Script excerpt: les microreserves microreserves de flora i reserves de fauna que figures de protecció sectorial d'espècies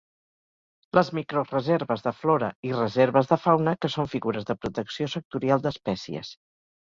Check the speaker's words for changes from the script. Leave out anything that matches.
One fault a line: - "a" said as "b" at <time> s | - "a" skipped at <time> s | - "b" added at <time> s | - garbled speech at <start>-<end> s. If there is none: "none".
- "microreserves" skipped at 2.0 s
- "són" added at 4.0 s